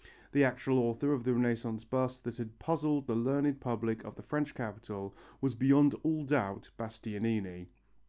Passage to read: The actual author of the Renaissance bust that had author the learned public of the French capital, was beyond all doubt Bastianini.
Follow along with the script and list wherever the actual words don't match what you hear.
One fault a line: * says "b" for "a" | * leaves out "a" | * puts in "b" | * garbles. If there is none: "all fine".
* says "puzzled" for "author"